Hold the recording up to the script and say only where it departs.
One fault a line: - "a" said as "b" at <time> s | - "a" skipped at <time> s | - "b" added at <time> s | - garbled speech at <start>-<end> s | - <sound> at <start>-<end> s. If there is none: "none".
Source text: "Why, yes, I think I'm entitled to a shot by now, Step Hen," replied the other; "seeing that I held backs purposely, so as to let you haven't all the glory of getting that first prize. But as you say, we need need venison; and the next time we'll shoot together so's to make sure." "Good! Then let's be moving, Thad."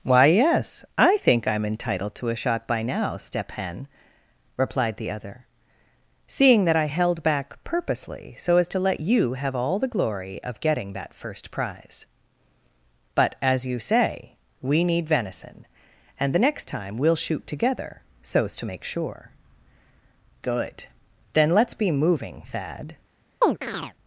- "backs" said as "back" at 7.2 s
- "haven't" said as "have" at 9.3 s
- "need" skipped at 15.1 s
- chirp at 23.4-23.9 s